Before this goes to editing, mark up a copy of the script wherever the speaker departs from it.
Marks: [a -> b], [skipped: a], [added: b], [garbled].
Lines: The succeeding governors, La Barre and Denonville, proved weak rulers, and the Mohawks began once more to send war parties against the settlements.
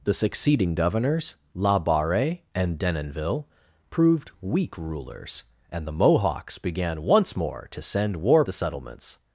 The succeeding governors, La Barre and Denonville, proved weak rulers, and the Mohawks began once more to send war [skipped: parties against] the settlements.